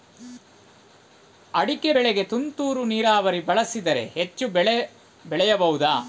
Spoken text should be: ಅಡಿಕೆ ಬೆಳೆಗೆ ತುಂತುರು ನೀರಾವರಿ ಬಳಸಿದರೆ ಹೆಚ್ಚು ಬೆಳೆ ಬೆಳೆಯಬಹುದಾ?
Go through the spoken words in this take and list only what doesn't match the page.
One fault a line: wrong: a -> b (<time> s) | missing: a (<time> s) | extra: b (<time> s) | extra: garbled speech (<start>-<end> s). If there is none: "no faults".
no faults